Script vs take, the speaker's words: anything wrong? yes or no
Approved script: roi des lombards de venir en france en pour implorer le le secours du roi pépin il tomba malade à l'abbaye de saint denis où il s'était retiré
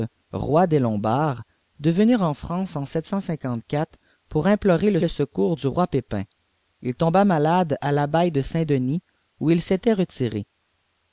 no